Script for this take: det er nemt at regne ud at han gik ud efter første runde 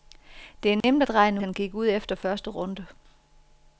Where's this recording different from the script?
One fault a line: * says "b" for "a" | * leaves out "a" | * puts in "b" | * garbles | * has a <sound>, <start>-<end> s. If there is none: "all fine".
* has a dropout, 0.8-0.8 s
* leaves out "ud at"